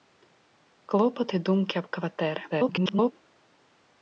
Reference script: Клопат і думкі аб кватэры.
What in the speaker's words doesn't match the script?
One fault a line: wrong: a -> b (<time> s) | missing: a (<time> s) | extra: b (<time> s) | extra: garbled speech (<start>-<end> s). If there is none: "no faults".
extra: garbled speech (2.5-3.1 s)